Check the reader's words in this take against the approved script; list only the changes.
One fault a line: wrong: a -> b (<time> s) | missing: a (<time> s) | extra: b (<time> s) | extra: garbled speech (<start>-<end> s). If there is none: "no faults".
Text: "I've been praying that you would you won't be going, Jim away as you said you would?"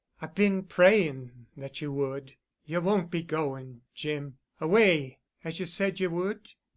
no faults